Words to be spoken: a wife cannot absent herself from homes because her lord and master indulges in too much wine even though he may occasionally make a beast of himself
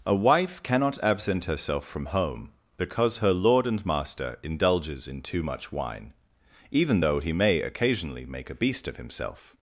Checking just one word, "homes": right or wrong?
wrong